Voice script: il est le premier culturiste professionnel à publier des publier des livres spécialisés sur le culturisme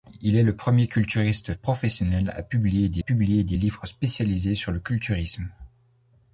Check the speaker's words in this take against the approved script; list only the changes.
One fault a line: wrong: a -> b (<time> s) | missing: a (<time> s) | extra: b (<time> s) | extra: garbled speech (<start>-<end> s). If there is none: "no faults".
no faults